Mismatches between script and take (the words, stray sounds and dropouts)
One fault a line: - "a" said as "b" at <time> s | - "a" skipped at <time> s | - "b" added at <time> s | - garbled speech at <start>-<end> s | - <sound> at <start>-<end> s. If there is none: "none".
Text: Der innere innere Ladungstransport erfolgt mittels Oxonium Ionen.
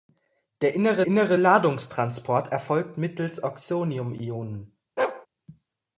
- bark at 5.0-5.3 s